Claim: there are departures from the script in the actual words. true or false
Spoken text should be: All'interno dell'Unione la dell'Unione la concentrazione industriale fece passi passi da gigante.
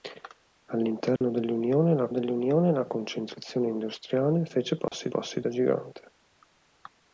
false